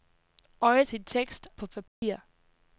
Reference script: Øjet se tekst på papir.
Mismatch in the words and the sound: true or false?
true